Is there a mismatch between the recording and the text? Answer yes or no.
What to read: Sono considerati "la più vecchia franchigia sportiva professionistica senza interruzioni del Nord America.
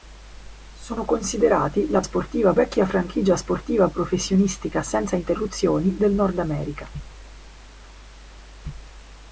yes